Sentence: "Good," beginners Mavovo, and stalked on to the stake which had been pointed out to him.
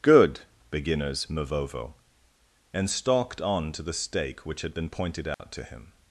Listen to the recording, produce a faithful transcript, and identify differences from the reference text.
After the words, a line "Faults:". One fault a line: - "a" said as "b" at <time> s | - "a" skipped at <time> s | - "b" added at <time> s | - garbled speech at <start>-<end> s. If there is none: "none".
"Good," beginners Mavovo, and stalked on to the stake which had been pointed out to him.
Faults:
none